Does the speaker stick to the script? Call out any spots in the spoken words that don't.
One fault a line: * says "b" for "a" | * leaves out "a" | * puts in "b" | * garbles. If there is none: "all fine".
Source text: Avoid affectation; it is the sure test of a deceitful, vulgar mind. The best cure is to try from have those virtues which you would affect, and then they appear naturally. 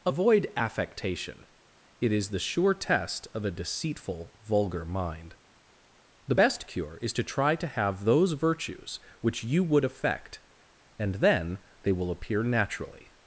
* says "to" for "from"
* puts in "will"